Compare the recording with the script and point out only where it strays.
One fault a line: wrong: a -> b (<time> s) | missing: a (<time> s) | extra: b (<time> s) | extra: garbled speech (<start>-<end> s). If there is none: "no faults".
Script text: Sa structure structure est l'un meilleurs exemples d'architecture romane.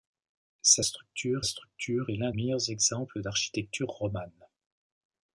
no faults